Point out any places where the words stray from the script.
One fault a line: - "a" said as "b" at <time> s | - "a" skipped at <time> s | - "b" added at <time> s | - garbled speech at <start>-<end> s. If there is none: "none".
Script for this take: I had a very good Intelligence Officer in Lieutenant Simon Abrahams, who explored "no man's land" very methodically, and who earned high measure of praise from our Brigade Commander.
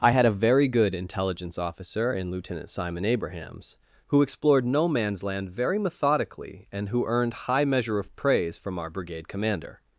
none